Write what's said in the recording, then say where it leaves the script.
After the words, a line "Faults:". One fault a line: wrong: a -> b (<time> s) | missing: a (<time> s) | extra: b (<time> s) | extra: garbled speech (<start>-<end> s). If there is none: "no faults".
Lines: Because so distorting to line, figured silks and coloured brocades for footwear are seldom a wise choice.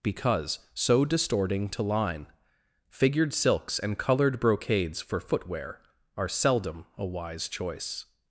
Because so distorting to line, figured silks and coloured brocades for footwear are seldom a wise choice.
Faults:
no faults